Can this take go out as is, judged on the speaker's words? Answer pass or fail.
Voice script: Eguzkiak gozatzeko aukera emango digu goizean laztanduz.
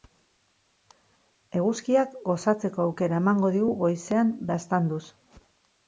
pass